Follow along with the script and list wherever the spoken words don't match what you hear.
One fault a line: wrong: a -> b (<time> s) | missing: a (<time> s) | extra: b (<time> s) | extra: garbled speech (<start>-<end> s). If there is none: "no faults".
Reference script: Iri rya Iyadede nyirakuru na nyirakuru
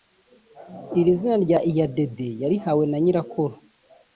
extra: zina (1.2 s)
wrong: nyirakuru -> yarihawe (2.4 s)